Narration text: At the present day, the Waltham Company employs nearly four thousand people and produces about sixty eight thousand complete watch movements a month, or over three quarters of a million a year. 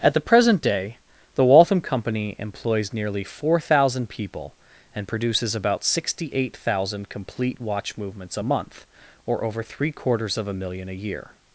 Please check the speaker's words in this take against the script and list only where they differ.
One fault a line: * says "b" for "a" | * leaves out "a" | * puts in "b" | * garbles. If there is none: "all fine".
all fine